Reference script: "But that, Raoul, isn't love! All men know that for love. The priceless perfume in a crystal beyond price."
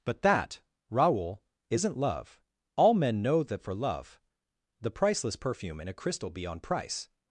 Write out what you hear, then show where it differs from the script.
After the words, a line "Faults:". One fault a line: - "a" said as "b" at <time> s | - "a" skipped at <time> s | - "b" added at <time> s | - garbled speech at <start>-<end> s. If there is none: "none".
"But that, Raoul, isn't love! All men know that for love. The priceless perfume in a crystal beyond price."
Faults:
none